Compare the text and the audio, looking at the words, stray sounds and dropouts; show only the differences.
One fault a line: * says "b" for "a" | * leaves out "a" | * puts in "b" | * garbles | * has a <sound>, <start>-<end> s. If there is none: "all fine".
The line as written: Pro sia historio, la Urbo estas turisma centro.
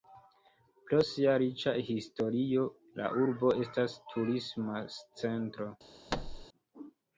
* puts in "riĉa"
* has a thud, 6.1-6.5 s